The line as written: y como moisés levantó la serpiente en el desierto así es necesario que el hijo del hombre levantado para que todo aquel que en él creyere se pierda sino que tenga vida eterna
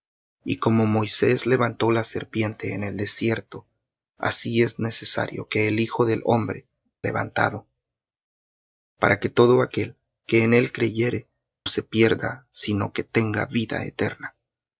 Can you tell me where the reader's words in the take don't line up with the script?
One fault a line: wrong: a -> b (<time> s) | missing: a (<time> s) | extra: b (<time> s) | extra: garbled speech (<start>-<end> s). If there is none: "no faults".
no faults